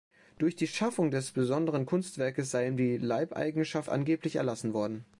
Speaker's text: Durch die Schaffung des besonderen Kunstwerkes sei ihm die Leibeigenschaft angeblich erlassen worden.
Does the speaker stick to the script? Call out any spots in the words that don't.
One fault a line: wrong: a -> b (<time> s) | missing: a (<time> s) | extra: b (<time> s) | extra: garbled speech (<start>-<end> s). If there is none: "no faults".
no faults